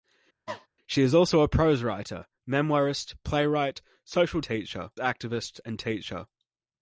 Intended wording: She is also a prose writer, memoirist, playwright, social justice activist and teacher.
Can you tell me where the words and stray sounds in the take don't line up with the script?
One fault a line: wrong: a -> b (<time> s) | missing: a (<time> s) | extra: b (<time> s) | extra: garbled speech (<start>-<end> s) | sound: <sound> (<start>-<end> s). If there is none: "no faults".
sound: cough (0.5-0.7 s)
wrong: justice -> teacher (4.4 s)